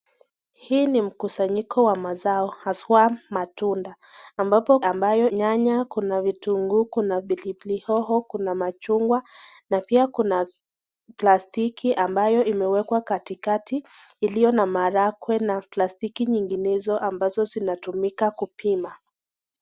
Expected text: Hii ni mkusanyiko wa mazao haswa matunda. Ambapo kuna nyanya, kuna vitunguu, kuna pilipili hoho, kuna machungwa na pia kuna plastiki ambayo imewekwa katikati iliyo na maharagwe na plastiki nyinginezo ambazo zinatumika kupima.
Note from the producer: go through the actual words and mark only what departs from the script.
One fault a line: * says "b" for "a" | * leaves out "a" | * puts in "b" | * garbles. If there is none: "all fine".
* says "ambayo" for "kuna"